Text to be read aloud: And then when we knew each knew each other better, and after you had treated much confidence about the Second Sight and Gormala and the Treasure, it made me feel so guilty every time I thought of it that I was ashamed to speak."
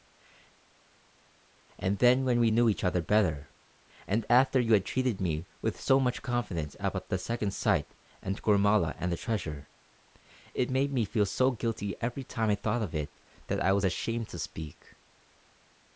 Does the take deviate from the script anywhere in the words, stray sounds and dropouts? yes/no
yes